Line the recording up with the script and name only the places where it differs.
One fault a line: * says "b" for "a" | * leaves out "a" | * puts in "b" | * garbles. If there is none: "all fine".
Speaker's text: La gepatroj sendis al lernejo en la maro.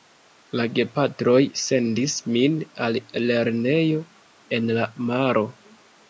* puts in "min"